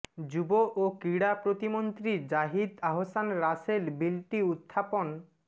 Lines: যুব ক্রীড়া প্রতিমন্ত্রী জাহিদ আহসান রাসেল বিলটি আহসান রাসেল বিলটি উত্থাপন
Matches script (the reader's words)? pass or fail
fail